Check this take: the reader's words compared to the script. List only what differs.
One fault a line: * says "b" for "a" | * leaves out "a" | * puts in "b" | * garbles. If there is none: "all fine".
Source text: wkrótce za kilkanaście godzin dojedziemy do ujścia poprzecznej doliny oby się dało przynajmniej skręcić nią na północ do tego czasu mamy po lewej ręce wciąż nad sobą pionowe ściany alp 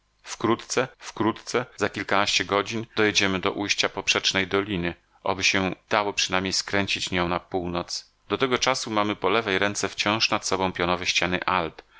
* puts in "wkrótce"